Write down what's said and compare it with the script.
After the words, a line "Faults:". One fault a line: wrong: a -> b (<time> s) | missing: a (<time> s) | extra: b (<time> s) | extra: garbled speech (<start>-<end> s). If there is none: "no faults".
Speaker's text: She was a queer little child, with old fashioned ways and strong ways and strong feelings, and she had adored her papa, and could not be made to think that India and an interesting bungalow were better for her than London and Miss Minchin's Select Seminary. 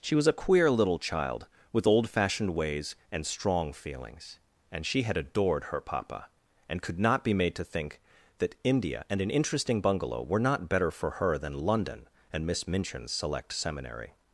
She was a queer little child, with old fashioned ways and strong feelings, and she had adored her papa, and could not be made to think that India and an interesting bungalow were not better for her than London and Miss Minchin's Select Seminary.
Faults:
missing: ways and strong (3.7 s)
extra: not (10.4 s)